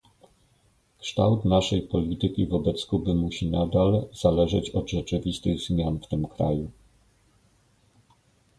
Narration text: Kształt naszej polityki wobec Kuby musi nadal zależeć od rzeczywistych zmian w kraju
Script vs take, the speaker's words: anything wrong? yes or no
yes